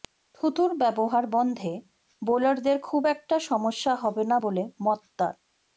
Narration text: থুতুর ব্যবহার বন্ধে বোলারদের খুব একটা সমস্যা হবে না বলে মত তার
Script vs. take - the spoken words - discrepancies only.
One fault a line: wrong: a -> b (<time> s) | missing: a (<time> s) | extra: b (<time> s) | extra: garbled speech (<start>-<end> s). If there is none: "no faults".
no faults